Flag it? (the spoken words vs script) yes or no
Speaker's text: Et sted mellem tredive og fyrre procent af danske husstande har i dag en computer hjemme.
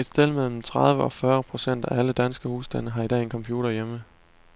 yes